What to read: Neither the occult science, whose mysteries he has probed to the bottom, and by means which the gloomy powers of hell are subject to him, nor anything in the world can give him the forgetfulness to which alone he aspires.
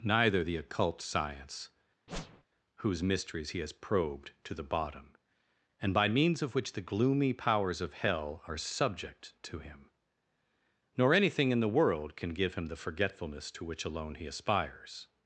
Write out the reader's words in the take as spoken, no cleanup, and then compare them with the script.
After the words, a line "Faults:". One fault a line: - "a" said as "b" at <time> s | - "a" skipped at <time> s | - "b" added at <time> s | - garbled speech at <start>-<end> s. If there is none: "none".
Neither the occult science, whose mysteries he has probed to the bottom, and by means of which the gloomy powers of hell are subject to him, nor anything in the world can give him the forgetfulness to which alone he aspires.
Faults:
- "of" added at 6.4 s